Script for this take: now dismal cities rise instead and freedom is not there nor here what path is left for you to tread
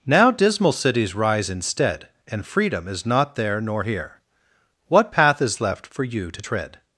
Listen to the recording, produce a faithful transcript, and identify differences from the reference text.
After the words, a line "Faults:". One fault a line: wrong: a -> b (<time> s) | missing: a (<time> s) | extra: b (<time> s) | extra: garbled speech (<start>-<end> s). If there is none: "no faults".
now dismal cities rise instead and freedom is not there nor here what path is left for you to tread
Faults:
no faults